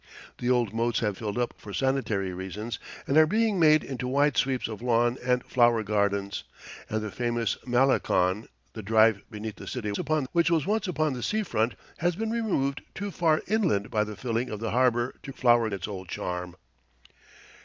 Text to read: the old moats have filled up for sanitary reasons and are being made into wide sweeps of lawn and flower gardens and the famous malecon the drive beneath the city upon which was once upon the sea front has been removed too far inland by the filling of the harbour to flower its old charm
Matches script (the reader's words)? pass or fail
pass